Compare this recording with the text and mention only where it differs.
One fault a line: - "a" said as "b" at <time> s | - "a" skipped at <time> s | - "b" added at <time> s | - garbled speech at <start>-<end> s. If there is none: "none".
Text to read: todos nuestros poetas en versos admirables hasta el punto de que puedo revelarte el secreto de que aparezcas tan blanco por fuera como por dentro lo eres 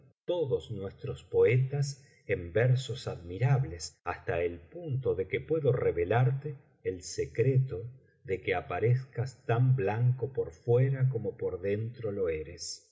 none